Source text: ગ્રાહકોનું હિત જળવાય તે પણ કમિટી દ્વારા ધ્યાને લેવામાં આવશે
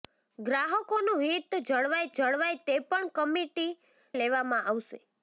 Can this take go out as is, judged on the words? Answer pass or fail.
fail